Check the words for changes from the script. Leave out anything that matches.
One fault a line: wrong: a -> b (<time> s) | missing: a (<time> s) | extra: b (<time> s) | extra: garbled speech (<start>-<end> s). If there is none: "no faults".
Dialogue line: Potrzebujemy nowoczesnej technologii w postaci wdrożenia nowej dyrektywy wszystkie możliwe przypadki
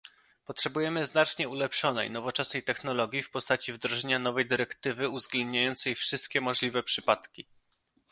extra: znacznie ulepszonej (1.1 s)
extra: uwzględniającej (5.1 s)